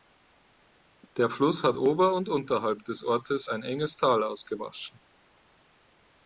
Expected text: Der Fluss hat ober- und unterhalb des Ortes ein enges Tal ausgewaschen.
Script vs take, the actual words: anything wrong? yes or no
no